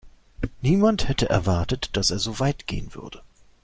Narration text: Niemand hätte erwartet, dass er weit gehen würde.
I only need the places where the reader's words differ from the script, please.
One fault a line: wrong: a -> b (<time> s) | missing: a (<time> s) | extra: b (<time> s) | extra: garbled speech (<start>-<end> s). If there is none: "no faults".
extra: so (2.2 s)